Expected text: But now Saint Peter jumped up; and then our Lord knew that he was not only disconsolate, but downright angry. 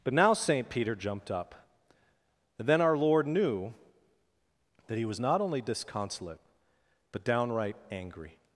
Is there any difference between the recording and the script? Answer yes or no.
no